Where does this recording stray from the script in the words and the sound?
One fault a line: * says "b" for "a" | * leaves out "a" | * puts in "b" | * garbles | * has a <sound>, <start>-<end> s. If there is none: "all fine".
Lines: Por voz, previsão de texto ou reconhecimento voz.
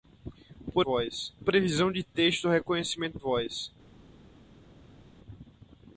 all fine